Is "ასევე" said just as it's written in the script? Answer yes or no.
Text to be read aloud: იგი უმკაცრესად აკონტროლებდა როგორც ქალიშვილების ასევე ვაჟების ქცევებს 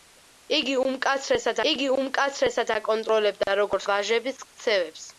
no